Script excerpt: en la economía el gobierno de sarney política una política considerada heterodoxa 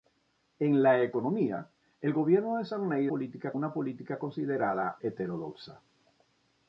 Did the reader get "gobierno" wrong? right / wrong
right